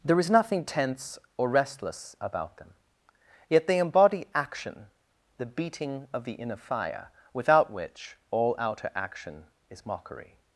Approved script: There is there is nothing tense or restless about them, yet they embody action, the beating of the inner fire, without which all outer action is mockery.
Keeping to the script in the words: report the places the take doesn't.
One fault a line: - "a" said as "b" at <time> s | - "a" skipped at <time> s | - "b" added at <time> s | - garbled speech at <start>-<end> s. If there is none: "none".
- "there is" skipped at 0.3 s